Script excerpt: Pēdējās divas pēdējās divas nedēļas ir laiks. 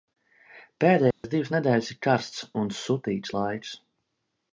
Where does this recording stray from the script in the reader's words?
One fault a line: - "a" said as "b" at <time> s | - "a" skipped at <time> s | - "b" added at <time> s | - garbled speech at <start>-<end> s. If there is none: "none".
- "pēdējās divas nedēļas ir" said as "nedēļas ir karsts un sutīgs" at 1.6 s